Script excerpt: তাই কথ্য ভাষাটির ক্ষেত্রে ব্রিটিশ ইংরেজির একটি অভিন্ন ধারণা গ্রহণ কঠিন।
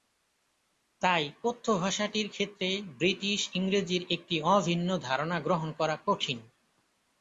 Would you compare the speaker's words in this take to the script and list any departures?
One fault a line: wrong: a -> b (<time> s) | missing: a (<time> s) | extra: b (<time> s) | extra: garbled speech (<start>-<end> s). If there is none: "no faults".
extra: করা (5.7 s)